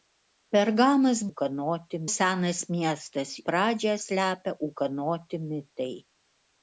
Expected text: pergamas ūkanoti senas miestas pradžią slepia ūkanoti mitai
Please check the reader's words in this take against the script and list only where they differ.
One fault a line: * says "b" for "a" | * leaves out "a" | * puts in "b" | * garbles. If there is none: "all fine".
all fine